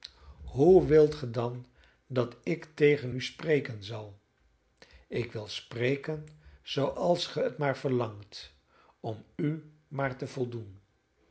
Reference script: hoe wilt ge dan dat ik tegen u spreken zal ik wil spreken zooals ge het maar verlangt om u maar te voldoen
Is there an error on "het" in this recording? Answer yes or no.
no